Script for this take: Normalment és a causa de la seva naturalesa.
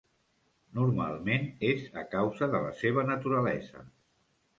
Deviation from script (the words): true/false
false